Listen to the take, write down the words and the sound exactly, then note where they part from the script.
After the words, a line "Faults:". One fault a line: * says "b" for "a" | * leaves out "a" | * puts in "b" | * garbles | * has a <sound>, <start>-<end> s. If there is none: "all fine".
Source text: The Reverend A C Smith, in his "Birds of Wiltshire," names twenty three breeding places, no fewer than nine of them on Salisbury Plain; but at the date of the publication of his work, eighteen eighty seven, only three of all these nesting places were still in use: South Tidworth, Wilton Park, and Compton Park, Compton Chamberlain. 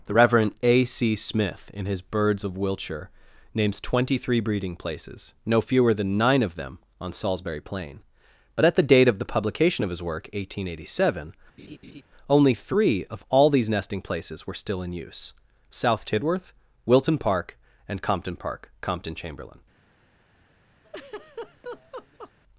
The Reverend A C Smith, in his "Birds of Wiltshire," names twenty three breeding places, no fewer than nine of them on Salisbury Plain; but at the date of the publication of his work, eighteen eighty seven, only three of all these nesting places were still in use: South Tidworth, Wilton Park, and Compton Park, Compton Chamberlain.
Faults:
* has a laugh, 11.6-12.0 s
* has a laugh, 20.8-22.3 s